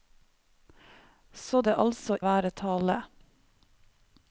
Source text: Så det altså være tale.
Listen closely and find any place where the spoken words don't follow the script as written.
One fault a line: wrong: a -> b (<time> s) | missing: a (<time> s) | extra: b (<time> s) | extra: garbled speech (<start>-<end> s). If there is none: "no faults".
no faults